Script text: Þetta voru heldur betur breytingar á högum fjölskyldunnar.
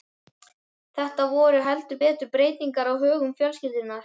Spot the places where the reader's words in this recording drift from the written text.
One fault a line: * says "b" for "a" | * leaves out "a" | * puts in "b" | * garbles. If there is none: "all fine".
all fine